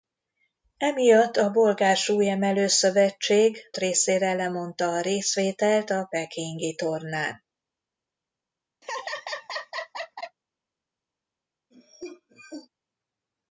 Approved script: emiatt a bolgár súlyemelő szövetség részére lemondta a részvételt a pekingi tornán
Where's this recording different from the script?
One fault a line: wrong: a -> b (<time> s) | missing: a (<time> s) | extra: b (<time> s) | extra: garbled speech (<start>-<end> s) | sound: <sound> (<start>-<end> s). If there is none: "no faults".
sound: laugh (8.8-10.4 s)
sound: cough (11.7-12.7 s)